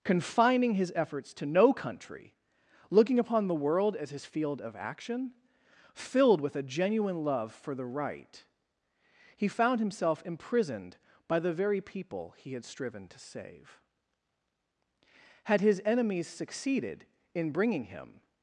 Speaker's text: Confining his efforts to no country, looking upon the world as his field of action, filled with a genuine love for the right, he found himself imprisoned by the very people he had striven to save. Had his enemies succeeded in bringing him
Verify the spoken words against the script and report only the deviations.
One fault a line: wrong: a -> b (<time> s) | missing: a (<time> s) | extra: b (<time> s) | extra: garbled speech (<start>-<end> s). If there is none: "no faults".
no faults